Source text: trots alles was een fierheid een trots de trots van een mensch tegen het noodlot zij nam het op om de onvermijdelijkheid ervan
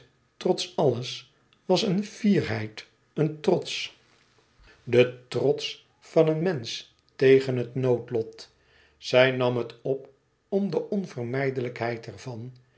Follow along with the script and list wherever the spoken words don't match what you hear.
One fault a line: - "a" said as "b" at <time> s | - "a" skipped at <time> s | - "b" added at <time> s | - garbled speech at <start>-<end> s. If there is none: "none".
none